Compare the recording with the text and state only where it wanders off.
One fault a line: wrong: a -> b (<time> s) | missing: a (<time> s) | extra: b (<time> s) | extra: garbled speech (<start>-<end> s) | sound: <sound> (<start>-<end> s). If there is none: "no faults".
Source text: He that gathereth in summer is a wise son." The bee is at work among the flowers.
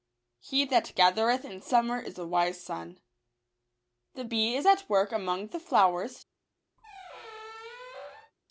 sound: squeak (6.8-8.3 s)